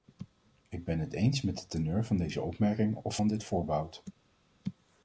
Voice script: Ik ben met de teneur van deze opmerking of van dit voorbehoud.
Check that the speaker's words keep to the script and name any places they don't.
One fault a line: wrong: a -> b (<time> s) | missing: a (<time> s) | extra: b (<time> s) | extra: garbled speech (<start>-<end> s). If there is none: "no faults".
extra: het eens (1.0 s)